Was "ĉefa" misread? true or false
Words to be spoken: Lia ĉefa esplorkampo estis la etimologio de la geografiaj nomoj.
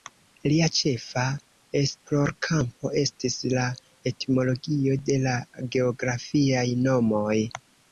false